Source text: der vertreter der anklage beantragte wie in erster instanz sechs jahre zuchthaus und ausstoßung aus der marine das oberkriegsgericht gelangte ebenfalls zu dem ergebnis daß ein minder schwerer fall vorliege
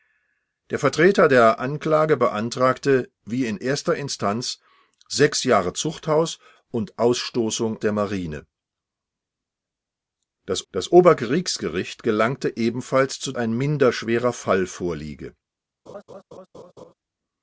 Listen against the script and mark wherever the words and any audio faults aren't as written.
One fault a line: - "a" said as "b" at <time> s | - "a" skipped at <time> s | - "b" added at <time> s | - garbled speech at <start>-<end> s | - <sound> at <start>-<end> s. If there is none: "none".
- "aus" skipped at 7.8 s
- "das" added at 10.7 s
- "dem ergebnis daß" skipped at 13.3 s
- laugh at 15.9-16.9 s